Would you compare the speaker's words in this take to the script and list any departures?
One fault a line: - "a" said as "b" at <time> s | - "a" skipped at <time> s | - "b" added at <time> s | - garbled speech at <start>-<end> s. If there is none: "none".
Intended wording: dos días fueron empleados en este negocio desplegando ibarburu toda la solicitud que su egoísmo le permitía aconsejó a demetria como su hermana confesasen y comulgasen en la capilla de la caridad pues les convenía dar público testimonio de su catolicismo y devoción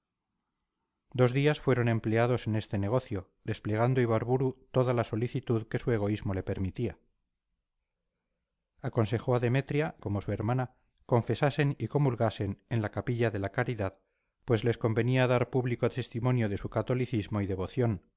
none